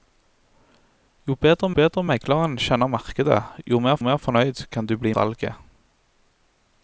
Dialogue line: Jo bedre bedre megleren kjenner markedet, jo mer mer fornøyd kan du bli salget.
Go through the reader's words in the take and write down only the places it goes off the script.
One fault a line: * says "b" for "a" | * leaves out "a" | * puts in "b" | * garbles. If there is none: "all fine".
all fine